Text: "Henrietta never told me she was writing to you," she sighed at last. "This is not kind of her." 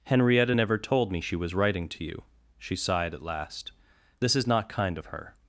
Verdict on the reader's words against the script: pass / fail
pass